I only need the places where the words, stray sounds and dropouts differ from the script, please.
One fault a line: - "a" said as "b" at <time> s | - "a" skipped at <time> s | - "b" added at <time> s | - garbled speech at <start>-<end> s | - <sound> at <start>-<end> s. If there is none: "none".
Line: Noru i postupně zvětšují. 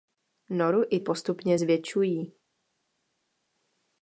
none